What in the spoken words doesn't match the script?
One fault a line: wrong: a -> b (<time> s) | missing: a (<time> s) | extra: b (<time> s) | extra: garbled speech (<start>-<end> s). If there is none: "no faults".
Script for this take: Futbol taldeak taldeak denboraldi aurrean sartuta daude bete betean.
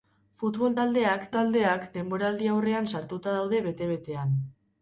no faults